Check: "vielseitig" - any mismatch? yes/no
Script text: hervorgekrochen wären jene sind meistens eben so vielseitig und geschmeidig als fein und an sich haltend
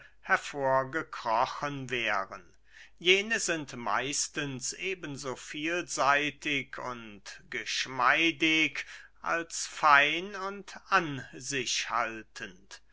no